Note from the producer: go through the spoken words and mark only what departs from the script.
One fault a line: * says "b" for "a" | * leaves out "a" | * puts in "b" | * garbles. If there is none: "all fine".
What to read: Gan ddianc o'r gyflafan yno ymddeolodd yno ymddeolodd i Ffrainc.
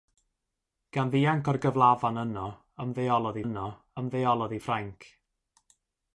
all fine